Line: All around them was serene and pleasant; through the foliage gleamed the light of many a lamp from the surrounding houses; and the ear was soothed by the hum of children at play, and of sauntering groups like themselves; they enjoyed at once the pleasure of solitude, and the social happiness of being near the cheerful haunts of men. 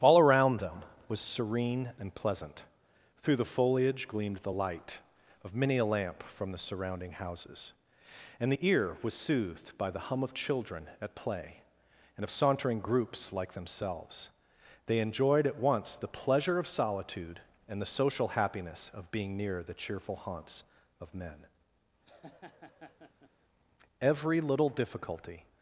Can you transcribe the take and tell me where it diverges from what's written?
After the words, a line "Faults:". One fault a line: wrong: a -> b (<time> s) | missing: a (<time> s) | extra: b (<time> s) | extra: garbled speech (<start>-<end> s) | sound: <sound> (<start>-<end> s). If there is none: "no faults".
All around them was serene and pleasant; through the foliage gleamed the light of many a lamp from the surrounding houses; and the ear was soothed by the hum of children at play, and of sauntering groups like themselves; they enjoyed at once the pleasure of solitude, and the social happiness of being near the cheerful haunts of men. Every little difficulty
Faults:
sound: laugh (22.1-23.3 s)
extra: Every little difficulty (24.0 s)